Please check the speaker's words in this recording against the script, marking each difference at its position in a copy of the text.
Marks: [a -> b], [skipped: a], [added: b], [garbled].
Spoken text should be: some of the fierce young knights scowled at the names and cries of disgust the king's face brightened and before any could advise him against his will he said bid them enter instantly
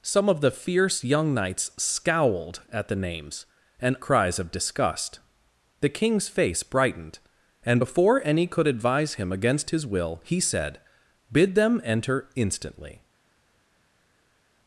some of the fierce young knights scowled at the names and cries of disgust the king's face brightened and before any could advise him against his will he said bid them enter instantly